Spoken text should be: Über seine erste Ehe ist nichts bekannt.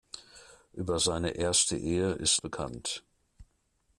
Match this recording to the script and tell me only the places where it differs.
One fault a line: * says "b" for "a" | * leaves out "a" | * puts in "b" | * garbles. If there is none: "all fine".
* leaves out "nichts"